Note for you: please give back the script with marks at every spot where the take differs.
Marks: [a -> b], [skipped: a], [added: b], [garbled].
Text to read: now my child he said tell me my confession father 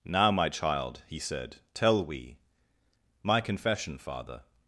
now my child he said tell [me -> we] my confession father